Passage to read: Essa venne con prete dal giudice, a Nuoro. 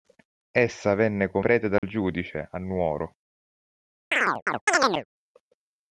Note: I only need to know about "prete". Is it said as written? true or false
true